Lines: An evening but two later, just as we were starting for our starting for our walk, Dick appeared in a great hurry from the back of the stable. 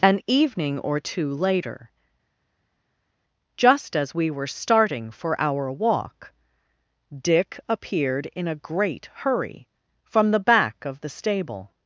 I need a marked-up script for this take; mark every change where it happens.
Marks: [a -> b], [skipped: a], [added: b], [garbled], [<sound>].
An evening [but -> or] two later, just as we were starting for our [skipped: starting for our] walk, Dick appeared in a great hurry from the back of the stable.